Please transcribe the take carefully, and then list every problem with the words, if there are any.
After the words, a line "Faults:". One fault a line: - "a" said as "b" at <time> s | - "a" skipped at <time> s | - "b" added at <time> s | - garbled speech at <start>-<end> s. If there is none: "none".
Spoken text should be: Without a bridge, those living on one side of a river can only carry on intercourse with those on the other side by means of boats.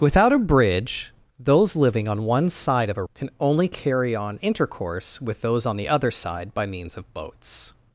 Without a bridge, those living on one side of a can only carry on intercourse with those on the other side by means of boats.
Faults:
- "river" skipped at 3.0 s